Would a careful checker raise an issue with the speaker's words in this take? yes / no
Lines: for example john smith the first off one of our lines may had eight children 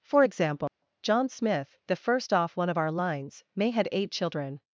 no